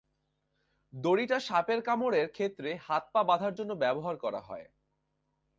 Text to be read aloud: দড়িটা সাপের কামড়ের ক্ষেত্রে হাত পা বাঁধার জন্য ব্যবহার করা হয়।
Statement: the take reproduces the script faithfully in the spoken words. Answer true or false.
true